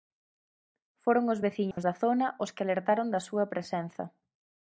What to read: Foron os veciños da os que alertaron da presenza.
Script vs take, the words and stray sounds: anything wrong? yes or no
yes